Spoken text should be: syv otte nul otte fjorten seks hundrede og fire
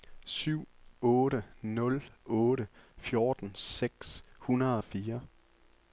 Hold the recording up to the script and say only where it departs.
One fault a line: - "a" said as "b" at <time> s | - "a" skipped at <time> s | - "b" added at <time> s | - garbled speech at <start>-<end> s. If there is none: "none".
none